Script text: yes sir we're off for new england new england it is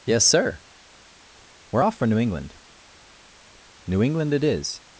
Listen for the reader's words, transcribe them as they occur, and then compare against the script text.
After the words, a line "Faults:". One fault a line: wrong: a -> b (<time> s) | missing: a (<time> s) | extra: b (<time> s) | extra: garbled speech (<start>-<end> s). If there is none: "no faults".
yes sir we're off for new england new england it is
Faults:
no faults